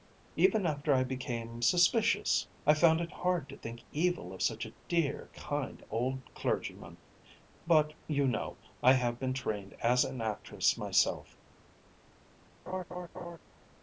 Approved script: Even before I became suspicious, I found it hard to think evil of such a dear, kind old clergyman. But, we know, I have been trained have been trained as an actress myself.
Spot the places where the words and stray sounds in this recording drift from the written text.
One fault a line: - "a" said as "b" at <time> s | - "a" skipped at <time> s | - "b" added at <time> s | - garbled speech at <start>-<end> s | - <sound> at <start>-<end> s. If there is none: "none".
- "before" said as "after" at 0.7 s
- "we" said as "you" at 8.1 s
- "have been trained" skipped at 9.8 s
- laugh at 12.7-13.4 s